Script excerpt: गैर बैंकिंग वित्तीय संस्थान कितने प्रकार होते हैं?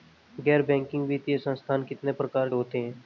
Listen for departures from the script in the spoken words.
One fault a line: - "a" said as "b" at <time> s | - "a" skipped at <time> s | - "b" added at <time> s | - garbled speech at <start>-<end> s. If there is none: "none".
none